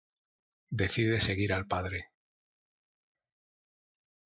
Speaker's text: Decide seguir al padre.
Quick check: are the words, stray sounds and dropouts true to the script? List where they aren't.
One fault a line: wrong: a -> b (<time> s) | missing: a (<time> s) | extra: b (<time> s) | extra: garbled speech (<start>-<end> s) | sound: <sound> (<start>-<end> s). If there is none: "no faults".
no faults